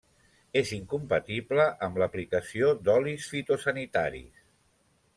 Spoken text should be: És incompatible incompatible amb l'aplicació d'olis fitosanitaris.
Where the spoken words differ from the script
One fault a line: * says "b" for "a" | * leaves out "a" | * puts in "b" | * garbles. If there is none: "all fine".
* leaves out "incompatible"